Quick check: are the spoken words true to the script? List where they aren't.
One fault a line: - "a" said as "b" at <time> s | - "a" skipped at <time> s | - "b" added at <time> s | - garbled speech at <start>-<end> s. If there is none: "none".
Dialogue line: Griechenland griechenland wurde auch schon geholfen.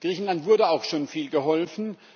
- "griechenland" skipped at 0.5 s
- "viel" added at 1.1 s